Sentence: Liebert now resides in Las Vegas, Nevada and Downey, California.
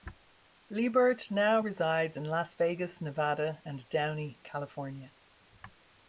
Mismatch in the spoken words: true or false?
false